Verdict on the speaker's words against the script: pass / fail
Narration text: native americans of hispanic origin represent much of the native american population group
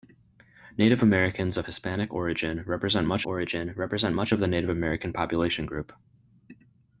fail